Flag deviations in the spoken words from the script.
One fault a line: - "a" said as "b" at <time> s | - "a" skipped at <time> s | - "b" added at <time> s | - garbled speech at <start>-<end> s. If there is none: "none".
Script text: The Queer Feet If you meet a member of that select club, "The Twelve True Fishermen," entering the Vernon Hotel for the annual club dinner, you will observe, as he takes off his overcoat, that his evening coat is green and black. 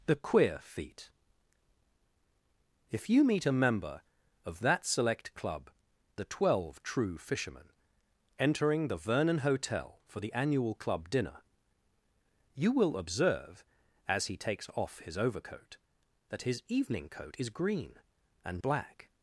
none